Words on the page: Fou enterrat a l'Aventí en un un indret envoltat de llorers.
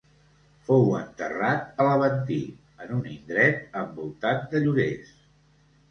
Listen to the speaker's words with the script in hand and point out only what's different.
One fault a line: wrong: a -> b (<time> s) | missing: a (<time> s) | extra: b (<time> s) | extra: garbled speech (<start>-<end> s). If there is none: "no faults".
missing: un (3.1 s)